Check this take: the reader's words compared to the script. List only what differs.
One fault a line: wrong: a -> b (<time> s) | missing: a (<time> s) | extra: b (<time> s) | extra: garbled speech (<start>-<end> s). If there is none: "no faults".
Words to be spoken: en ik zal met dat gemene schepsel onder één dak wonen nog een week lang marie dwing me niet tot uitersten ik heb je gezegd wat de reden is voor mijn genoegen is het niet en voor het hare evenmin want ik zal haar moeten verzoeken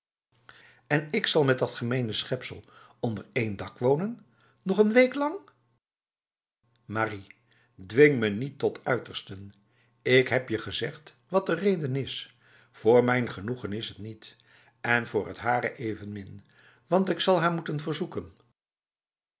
no faults